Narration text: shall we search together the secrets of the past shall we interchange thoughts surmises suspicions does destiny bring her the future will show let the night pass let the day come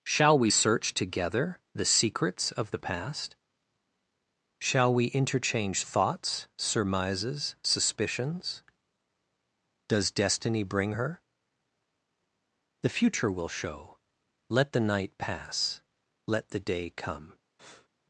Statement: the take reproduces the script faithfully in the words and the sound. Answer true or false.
false